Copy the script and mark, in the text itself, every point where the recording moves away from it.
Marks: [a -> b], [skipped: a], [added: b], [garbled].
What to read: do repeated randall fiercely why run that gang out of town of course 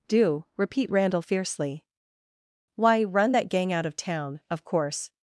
do [repeated -> repeat] randall fiercely why run that gang out of town of course